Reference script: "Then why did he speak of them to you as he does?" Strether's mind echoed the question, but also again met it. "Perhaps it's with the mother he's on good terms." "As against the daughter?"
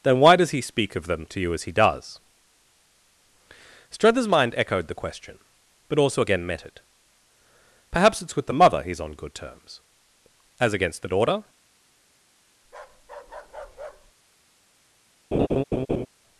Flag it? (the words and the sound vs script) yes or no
yes